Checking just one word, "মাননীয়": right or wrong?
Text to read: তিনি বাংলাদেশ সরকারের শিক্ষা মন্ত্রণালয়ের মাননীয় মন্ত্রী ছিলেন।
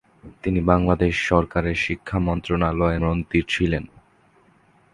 wrong